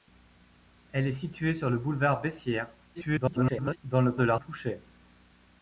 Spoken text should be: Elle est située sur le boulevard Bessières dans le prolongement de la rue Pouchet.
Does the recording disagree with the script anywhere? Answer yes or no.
yes